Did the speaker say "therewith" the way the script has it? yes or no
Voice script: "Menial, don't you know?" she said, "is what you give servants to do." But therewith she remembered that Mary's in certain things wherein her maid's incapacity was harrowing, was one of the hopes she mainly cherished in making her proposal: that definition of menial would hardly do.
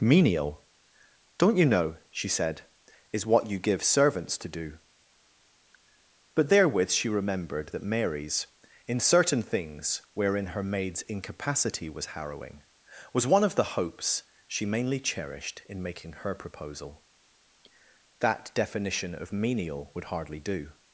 yes